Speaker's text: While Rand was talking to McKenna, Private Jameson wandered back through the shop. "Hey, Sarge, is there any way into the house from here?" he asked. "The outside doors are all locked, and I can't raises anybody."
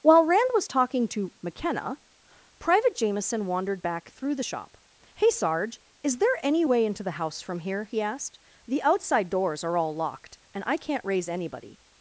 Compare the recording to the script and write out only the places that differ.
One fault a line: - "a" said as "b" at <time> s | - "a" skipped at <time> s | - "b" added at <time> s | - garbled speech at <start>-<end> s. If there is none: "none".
- "raises" said as "raise" at 11.0 s